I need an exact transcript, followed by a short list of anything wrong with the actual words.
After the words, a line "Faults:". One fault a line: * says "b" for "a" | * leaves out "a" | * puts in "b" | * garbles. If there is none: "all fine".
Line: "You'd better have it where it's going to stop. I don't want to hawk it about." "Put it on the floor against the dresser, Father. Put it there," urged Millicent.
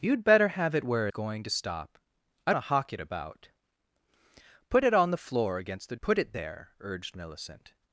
"You'd better have it where going to stop. I to hawk it about." "Put it on the floor against the. Put it there," urged Millicent.
Faults:
* leaves out "it's"
* leaves out "don't want"
* leaves out "dresser Father"